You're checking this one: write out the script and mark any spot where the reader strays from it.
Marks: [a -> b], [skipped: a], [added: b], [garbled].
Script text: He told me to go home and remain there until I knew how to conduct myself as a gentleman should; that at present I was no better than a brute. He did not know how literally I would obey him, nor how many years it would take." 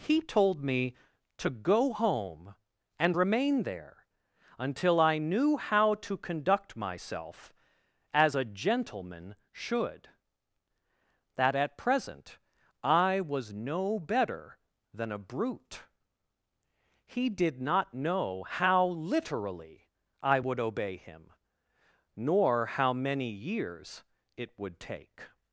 He told me to go home and remain there until I knew how to conduct myself as a gentleman should; that at present I was no better than a brute. He did not know how literally I would obey him, nor how many years it would take."